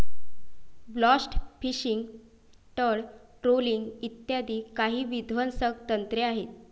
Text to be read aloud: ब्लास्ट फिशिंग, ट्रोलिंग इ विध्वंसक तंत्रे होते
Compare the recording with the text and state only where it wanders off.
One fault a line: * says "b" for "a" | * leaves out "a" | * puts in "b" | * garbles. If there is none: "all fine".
* puts in "तळ"
* puts in "काही"
* says "आहेत" for "होते"